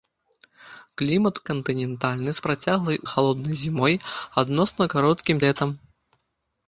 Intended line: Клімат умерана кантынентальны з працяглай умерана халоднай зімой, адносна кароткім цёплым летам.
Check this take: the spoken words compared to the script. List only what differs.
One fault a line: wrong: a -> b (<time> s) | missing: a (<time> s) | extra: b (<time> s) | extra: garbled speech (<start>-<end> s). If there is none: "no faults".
missing: умерана (1.4 s)
missing: умерана (3.0 s)
missing: цёплым (5.4 s)